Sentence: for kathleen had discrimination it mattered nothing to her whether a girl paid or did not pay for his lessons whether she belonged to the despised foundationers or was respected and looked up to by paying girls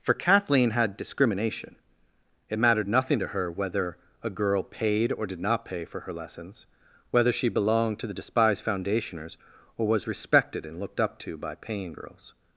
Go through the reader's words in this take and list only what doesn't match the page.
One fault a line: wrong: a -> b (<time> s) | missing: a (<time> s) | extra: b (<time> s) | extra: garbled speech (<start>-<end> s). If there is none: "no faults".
wrong: his -> her (6.0 s)